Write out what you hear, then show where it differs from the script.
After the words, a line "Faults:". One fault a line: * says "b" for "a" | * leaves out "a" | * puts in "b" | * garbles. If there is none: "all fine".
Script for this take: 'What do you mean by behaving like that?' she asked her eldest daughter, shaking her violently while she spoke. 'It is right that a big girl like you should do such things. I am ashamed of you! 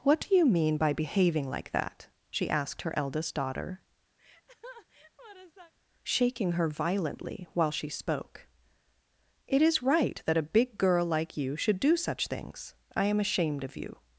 'What do you mean by behaving like that?' she asked her eldest daughter, shaking her violently while she spoke. 'It is right that a big girl like you should do such things. I am ashamed of you!
Faults:
all fine